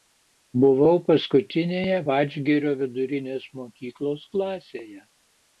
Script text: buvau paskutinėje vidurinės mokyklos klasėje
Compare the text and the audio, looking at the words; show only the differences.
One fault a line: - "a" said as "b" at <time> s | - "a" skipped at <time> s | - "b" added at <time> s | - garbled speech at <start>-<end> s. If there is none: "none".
- "vadžgirio" added at 2.1 s